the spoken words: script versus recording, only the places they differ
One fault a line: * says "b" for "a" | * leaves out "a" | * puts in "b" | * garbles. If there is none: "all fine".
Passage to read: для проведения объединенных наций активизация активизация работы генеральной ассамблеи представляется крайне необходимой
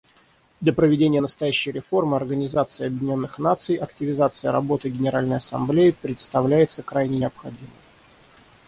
* puts in "настоящей реформы организации"
* leaves out "активизация"